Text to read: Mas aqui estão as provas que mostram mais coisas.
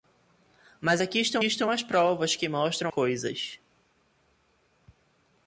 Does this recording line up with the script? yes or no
no